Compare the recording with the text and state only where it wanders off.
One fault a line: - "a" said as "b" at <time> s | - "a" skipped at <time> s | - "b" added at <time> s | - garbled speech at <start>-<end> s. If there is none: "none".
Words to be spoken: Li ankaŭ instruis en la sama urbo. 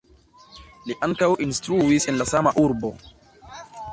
none